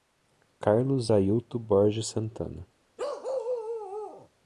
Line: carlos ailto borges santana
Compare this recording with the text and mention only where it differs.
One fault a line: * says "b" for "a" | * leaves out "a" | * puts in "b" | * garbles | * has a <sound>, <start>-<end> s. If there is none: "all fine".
* has a bark, 3.0-4.3 s